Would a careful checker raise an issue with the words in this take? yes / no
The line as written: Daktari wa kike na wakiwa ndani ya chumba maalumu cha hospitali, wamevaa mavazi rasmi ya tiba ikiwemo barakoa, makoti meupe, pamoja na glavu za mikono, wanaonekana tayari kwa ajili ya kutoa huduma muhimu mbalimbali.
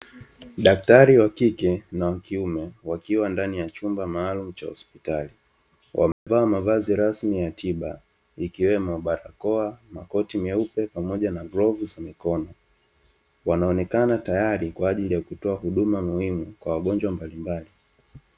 yes